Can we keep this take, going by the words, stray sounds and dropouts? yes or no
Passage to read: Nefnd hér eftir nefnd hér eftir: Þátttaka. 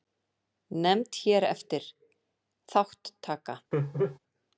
no